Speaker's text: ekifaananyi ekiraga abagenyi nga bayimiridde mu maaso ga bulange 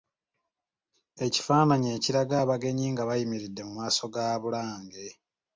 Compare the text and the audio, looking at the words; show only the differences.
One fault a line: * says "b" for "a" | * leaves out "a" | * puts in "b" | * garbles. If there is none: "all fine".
all fine